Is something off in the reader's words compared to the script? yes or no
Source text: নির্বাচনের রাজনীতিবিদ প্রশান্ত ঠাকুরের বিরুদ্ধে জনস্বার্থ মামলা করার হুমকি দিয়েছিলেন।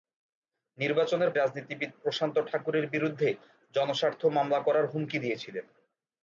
no